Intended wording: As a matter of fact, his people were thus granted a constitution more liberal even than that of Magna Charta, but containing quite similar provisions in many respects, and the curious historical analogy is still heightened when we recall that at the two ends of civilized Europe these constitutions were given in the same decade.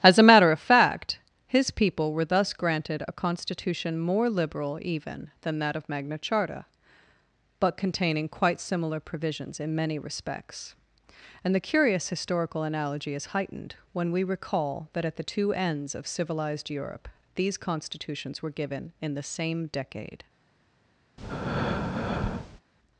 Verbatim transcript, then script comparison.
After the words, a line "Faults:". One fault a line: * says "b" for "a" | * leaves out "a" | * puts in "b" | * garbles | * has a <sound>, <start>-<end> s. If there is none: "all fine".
As a matter of fact, his people were thus granted a constitution more liberal even than that of Magna Charta, but containing quite similar provisions in many respects, and the curious historical analogy is heightened when we recall that at the two ends of civilized Europe these constitutions were given in the same decade.
Faults:
* leaves out "still"
* has a breath, 21.2-22.6 s